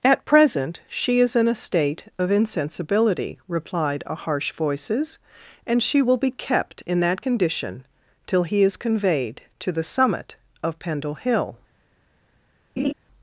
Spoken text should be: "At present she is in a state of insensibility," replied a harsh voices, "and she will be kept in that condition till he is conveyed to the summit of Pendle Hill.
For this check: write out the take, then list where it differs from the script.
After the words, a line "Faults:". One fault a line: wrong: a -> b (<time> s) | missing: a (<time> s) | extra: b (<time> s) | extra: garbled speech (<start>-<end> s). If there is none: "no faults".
"At present she is in a state of insensibility," replied a harsh voices, "and she will be kept in that condition till he is conveyed to the summit of Pendle Hill.
Faults:
no faults